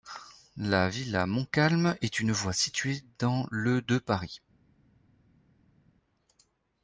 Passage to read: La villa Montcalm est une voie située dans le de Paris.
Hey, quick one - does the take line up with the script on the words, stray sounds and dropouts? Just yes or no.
yes